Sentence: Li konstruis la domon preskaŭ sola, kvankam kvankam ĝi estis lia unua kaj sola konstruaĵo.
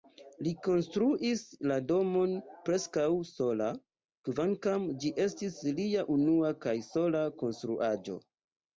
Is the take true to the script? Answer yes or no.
no